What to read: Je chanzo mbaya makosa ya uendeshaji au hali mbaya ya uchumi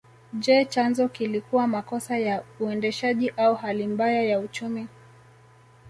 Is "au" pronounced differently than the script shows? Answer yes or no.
no